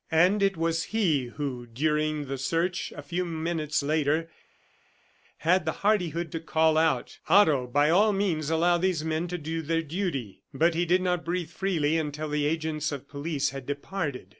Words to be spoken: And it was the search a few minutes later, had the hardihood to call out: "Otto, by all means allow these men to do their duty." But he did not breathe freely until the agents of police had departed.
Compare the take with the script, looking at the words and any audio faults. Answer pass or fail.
fail